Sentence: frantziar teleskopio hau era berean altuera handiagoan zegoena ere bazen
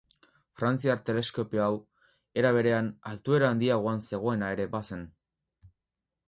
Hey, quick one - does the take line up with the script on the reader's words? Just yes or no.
yes